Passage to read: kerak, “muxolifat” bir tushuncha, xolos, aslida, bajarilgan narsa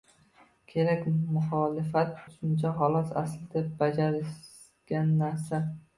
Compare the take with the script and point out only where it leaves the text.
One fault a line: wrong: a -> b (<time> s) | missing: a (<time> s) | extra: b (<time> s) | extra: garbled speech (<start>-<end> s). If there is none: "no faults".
missing: bir (2.1 s)